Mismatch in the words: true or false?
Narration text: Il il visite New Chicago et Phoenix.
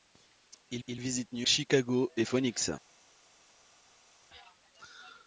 false